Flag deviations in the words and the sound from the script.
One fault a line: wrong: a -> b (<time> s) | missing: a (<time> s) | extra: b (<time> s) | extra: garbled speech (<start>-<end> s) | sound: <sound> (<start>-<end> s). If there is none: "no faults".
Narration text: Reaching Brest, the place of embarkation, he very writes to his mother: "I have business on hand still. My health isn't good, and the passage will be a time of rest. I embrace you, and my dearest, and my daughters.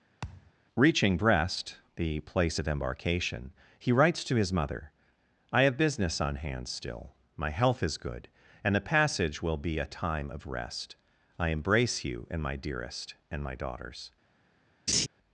sound: thud (0.2-0.5 s)
missing: very (3.9 s)
wrong: isn't -> is (7.8 s)
sound: laugh (14.9-15.1 s)